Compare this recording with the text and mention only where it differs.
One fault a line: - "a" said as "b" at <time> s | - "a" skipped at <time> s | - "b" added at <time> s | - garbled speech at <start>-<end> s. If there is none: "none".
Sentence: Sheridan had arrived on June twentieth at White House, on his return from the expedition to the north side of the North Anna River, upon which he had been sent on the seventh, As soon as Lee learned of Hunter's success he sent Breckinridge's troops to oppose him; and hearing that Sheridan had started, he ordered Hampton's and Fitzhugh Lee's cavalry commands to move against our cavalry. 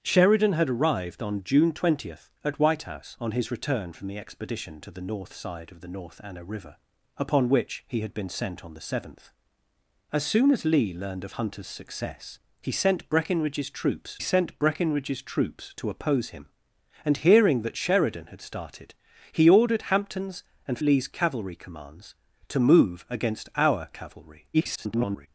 - "sent Breckinridge's troops" added at 14.2 s
- "Fitzhugh" skipped at 20.8 s
- garbled speech at 24.5-25.3 s